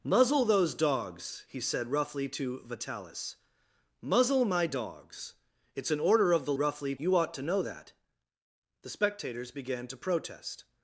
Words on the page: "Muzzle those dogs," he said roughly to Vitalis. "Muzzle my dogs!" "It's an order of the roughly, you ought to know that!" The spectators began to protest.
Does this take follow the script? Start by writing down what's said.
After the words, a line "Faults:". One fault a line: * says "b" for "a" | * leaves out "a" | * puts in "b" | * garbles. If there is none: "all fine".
"Muzzle those dogs," he said roughly to Vitalis. "Muzzle my dogs!" "It's an order of the roughly, you ought to know that!" The spectators began to protest.
Faults:
all fine